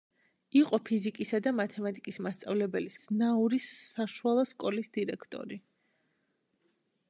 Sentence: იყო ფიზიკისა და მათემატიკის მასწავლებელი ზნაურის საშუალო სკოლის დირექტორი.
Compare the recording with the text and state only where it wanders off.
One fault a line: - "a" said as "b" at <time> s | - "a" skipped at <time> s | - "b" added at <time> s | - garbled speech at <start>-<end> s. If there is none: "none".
none